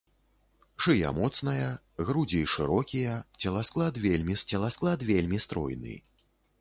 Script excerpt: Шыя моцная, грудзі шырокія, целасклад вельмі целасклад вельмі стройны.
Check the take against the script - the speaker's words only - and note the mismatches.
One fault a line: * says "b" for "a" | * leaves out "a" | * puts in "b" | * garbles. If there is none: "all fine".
all fine